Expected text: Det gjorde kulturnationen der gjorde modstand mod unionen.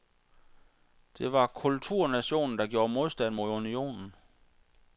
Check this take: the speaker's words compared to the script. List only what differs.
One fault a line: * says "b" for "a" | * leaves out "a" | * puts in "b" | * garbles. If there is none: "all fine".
* says "var" for "gjorde"